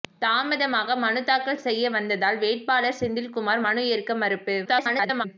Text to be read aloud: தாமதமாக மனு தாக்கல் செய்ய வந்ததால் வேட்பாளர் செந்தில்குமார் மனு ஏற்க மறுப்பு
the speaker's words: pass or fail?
fail